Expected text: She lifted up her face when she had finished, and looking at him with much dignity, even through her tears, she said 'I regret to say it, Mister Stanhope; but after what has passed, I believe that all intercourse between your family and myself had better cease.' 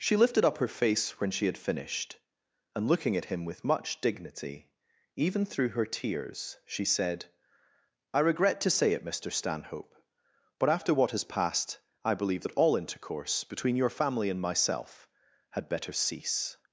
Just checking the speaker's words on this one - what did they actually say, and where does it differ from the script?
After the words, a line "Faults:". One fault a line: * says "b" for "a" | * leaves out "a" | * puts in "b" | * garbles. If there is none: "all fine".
She lifted up her face when she had finished, and looking at him with much dignity, even through her tears, she said 'I regret to say it, Mister Stanhope; but after what has passed, I believe that all intercourse between your family and myself had better cease.'
Faults:
all fine